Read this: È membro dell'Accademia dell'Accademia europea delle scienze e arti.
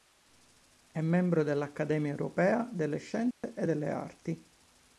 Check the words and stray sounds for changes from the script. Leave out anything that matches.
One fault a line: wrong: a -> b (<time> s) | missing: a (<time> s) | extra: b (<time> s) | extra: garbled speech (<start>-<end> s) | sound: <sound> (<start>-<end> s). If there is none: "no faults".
missing: dell'Accademia (2.1 s)
sound: dropout (3.3-3.4 s)
extra: delle (3.6 s)